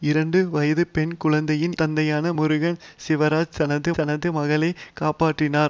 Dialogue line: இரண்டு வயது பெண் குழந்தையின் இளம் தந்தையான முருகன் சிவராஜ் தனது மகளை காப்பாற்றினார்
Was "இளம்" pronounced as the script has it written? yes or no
no